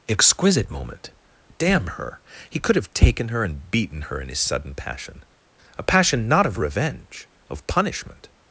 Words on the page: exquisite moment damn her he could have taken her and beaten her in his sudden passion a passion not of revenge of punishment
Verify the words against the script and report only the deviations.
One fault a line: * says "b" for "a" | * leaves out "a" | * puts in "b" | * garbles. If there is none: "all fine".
all fine